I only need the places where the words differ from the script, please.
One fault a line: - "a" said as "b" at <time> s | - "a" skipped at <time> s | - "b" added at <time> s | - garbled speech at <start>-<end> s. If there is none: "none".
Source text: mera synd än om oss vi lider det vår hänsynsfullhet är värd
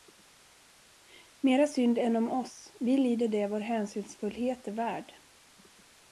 none